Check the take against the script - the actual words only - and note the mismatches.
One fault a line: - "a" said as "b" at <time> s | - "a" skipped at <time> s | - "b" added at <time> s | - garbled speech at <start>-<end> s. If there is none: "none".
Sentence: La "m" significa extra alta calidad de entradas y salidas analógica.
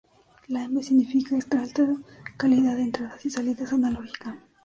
none